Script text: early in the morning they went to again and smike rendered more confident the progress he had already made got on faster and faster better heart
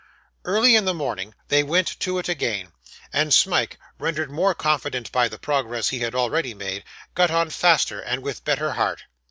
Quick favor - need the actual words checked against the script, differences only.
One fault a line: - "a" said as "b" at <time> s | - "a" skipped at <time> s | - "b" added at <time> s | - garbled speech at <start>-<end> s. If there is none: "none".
- "it" added at 2.2 s
- "by" added at 5.1 s
- "faster" said as "with" at 8.2 s